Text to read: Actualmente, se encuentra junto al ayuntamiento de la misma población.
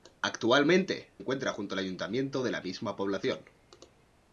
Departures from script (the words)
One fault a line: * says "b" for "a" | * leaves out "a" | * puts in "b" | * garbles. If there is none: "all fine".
* leaves out "se"